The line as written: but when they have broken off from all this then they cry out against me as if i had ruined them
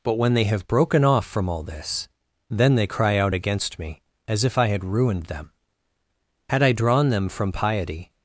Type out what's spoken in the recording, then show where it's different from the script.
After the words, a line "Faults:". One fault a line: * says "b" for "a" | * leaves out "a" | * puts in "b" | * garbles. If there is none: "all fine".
but when they have broken off from all this then they cry out against me as if i had ruined them had i drawn them from piety
Faults:
* puts in "had i drawn them from piety"